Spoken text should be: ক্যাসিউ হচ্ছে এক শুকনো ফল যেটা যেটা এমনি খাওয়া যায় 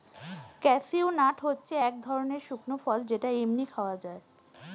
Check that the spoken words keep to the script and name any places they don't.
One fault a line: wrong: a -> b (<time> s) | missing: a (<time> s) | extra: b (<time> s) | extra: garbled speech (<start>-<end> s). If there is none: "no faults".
extra: নাট (1.2 s)
extra: ধরনের (2.0 s)
missing: যেটা (3.3 s)